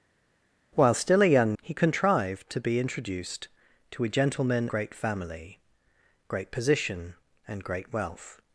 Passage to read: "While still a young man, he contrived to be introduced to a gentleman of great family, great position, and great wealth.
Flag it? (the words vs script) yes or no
yes